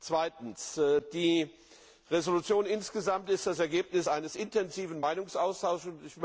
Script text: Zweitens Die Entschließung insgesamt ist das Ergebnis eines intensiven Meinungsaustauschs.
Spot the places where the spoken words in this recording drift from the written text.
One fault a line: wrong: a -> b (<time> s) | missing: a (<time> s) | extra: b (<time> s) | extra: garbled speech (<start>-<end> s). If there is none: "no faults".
no faults